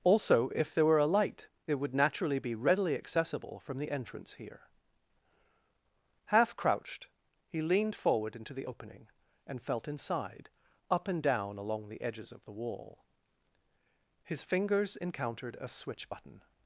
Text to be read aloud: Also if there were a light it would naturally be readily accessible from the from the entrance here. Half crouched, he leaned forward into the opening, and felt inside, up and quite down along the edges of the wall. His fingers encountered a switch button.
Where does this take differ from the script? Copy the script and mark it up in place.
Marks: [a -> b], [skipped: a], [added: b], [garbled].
Also if there were a light it would naturally be readily accessible from the [skipped: from the] entrance here. Half crouched, he leaned forward into the opening, and felt inside, up and [skipped: quite] down along the edges of the wall. His fingers encountered a switch button.